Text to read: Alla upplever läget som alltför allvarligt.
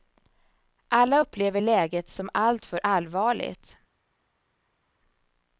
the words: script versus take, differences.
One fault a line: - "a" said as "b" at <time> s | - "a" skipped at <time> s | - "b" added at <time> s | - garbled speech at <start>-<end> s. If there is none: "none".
none